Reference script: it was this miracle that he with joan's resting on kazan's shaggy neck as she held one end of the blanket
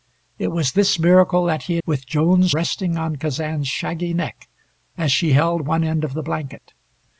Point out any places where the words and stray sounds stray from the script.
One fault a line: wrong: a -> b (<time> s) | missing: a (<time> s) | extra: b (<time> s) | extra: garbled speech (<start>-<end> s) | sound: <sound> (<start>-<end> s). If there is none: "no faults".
no faults